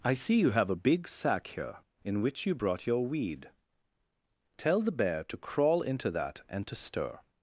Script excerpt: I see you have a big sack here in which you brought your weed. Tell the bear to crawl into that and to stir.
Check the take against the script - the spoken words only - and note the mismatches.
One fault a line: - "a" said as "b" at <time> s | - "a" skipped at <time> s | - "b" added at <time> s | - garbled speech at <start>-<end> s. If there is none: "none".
none